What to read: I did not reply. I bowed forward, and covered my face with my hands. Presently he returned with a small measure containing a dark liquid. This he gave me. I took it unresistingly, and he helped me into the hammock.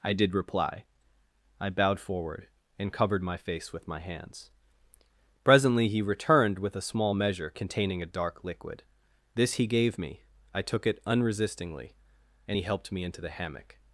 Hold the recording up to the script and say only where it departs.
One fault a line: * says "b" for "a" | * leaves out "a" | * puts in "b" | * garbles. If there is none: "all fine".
* leaves out "not"